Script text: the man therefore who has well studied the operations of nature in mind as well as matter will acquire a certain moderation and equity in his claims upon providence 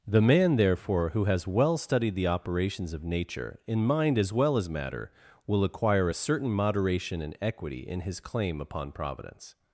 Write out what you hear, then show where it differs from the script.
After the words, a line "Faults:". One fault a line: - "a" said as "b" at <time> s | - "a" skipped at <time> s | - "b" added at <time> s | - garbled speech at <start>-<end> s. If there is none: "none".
the man therefore who has well studied the operations of nature in mind as well as matter will acquire a certain moderation and equity in his claim upon providence
Faults:
- "claims" said as "claim" at 8.2 s